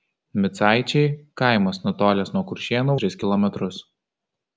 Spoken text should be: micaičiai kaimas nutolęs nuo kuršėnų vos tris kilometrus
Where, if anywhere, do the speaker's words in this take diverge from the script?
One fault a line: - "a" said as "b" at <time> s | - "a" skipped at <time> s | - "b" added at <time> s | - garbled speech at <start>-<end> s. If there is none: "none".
- "vos" skipped at 3.0 s